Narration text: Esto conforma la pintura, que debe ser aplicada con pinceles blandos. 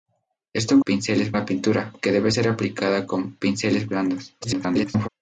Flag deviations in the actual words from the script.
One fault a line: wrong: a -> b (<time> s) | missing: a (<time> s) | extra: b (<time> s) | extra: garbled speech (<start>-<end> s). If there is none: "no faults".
wrong: conforma -> pinceles (0.8 s)
extra: garbled speech (4.4-5.1 s)